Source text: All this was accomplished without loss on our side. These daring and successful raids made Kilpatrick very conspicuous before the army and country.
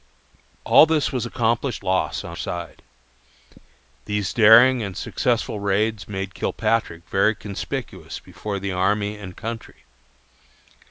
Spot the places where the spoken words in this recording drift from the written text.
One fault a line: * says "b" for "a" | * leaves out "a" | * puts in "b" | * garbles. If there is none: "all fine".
* leaves out "without"
* leaves out "our"